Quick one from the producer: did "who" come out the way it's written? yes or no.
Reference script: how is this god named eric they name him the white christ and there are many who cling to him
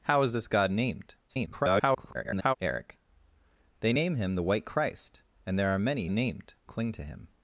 no